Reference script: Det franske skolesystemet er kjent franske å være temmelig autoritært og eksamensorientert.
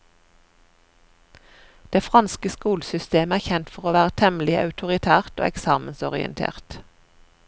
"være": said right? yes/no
yes